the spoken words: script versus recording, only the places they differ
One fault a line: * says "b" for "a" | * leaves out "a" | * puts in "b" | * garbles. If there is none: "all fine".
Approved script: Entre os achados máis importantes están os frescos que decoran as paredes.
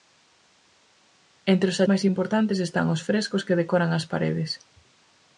* leaves out "achados"